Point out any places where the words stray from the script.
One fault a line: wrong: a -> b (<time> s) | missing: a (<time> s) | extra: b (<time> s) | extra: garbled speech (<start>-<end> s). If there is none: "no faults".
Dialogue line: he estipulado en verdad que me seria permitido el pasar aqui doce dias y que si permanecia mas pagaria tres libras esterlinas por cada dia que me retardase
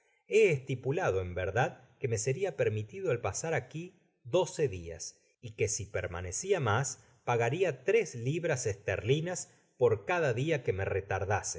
no faults